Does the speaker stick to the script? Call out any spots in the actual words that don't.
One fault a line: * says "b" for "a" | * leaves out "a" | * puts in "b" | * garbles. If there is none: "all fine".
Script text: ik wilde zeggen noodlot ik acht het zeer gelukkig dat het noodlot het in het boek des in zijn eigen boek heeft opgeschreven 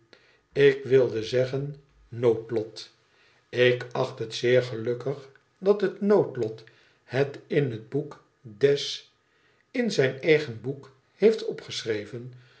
all fine